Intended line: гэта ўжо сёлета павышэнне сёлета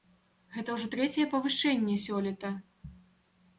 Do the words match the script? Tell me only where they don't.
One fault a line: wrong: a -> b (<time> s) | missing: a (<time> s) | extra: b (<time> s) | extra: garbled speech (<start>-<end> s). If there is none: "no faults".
wrong: сёлета -> трэцяе (0.9 s)